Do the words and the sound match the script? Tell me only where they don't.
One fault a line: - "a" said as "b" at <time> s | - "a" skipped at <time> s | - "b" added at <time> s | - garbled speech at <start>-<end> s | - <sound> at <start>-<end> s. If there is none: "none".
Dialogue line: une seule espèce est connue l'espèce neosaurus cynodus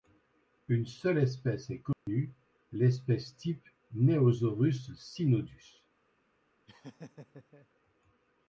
- dropout at 1.9-2.1 s
- "type" added at 3.4 s
- laugh at 6.7-7.7 s